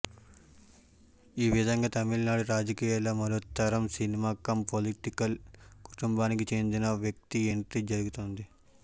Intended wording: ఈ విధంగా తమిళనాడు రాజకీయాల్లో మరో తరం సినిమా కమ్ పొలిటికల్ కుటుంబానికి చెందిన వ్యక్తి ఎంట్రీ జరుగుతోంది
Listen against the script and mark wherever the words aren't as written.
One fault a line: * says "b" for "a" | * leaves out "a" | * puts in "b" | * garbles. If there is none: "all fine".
all fine